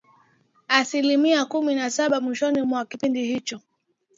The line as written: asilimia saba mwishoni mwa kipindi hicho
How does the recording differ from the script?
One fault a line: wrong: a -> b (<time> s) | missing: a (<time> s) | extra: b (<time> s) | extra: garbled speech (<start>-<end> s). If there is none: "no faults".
extra: kumi na (1.4 s)